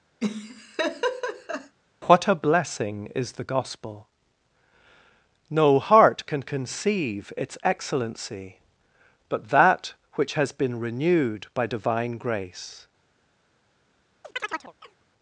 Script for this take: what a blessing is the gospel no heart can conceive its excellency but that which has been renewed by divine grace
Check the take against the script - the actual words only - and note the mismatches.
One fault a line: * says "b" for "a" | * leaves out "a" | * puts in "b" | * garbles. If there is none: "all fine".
all fine